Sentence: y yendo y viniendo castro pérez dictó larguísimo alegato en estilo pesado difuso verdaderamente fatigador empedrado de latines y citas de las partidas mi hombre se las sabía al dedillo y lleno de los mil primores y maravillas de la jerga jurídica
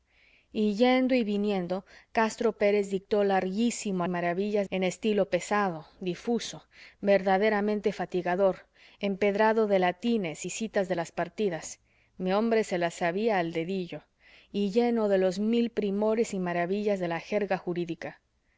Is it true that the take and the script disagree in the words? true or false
true